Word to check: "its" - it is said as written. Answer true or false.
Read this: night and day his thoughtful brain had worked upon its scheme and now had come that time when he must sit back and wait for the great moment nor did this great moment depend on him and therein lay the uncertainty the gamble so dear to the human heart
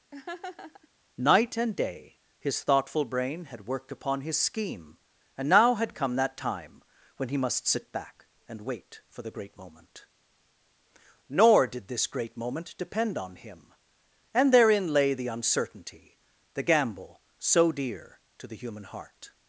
false